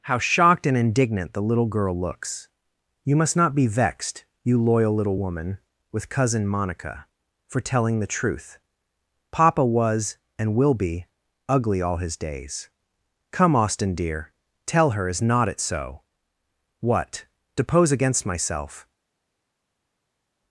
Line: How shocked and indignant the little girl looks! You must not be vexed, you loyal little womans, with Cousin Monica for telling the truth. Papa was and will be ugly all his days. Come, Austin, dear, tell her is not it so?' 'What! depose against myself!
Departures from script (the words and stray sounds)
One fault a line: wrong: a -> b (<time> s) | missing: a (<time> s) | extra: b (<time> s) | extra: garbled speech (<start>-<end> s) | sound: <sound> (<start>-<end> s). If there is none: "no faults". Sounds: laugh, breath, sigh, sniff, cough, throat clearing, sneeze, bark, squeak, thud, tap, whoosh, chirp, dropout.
wrong: womans -> woman (5.2 s)